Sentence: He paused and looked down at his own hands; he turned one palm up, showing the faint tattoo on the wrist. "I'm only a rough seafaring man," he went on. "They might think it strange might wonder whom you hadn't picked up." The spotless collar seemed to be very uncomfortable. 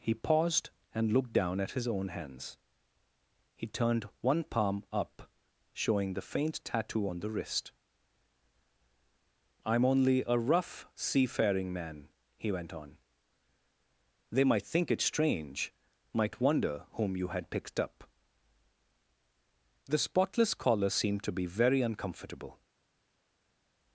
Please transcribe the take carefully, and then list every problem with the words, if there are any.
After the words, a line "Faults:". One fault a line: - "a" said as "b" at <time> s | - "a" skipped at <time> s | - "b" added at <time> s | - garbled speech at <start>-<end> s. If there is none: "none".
He paused and looked down at his own hands; he turned one palm up, showing the faint tattoo on the wrist. "I'm only a rough seafaring man," he went on. "They might think it strange might wonder whom you had picked up." The spotless collar seemed to be very uncomfortable.
Faults:
- "hadn't" said as "had" at 17.3 s